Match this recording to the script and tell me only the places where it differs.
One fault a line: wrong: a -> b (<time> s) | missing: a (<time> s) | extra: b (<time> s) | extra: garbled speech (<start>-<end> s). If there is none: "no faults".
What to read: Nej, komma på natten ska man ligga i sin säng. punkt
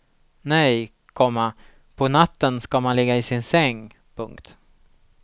no faults